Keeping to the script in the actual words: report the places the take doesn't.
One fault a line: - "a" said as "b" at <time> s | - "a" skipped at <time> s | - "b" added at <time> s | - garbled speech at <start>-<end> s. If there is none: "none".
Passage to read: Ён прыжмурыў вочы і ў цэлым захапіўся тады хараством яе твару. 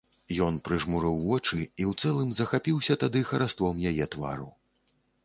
none